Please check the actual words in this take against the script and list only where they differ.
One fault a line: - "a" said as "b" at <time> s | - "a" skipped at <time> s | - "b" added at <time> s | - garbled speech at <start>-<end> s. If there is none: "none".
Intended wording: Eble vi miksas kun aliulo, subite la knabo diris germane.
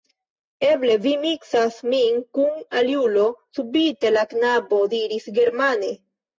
- "min" added at 1.9 s